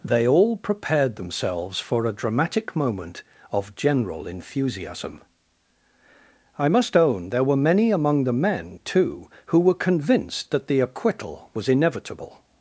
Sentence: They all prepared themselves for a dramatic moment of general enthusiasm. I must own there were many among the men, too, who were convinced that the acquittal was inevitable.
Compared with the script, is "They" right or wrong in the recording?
right